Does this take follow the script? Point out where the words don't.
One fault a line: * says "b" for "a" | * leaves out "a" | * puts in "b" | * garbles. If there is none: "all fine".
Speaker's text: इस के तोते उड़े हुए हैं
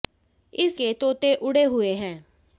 all fine